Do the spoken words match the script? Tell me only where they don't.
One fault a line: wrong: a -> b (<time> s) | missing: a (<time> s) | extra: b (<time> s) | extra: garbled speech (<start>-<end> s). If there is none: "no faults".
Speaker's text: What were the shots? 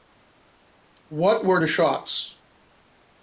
no faults